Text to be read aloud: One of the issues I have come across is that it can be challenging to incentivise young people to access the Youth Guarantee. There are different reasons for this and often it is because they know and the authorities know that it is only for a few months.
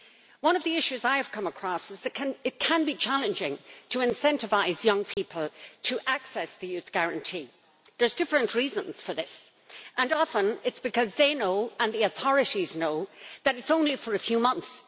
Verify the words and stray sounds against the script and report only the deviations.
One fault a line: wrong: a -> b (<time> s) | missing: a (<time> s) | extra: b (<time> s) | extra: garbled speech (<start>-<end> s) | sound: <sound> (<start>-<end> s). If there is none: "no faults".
sound: dropout (5.1-5.2 s)